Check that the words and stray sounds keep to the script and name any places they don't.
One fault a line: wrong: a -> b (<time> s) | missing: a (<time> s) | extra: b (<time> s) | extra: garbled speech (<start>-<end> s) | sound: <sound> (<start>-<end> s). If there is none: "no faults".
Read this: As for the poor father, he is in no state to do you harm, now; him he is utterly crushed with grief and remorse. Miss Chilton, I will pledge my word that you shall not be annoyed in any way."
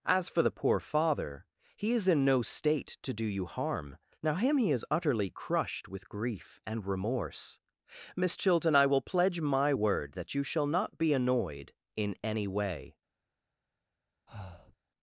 sound: breath (14.3-14.8 s)